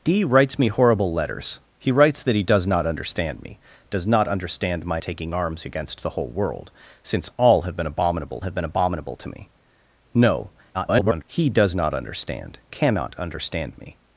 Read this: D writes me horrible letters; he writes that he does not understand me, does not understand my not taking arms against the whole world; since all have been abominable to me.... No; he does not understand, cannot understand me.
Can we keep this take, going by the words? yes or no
no